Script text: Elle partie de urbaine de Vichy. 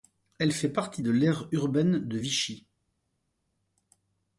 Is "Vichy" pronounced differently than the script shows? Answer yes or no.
no